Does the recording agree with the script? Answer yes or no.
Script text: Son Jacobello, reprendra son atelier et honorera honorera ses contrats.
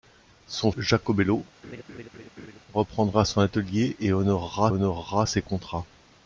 yes